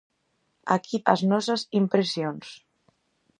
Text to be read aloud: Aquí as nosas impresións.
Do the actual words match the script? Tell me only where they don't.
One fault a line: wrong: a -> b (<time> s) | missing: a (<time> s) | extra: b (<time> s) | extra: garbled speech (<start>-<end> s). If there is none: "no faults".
no faults